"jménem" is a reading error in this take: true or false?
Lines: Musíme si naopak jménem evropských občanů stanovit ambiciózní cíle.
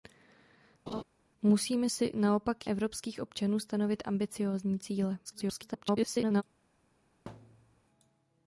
true